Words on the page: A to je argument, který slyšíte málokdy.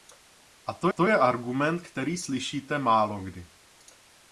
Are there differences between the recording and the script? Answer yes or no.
yes